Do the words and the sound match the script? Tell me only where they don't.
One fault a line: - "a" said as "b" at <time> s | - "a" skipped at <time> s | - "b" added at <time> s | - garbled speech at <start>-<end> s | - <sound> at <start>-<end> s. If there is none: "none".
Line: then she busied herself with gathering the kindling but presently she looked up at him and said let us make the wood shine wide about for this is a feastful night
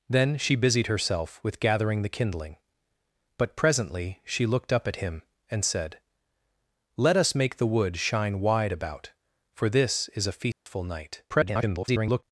- dropout at 10.5-10.7 s
- garbled speech at 11.3-12.2 s